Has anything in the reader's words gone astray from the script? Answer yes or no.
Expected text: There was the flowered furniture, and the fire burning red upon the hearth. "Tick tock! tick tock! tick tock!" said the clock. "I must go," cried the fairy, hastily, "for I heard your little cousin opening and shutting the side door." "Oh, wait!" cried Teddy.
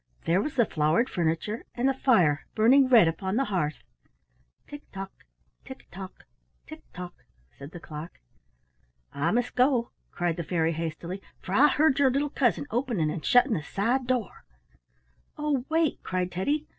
no